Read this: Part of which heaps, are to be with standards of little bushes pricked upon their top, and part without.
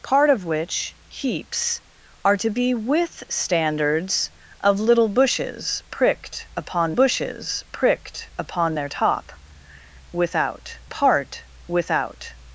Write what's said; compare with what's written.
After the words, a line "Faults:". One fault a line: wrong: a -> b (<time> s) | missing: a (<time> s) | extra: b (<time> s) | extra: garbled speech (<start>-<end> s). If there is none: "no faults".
Part of which heaps, are to be with standards of little bushes pricked upon bushes pricked upon their top, without part without.
Faults:
extra: bushes pricked upon (6.9 s)
wrong: and -> without (10.1 s)